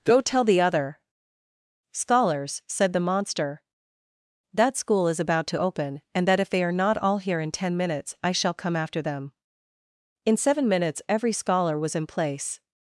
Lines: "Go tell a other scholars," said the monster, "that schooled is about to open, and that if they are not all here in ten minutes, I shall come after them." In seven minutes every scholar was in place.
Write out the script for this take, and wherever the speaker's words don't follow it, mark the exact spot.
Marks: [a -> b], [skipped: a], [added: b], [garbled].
"Go tell [a -> the] other scholars," said the monster, "that [schooled -> school] is about to open, and that if they are not all here in ten minutes, I shall come after them." In seven minutes every scholar was in place.